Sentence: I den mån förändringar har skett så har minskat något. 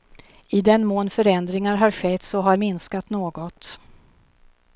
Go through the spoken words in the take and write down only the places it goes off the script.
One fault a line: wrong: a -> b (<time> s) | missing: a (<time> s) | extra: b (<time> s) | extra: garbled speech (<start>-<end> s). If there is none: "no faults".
no faults